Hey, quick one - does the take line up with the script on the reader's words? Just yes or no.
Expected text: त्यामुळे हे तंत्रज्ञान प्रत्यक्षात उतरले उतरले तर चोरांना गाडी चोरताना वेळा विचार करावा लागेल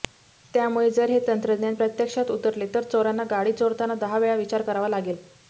no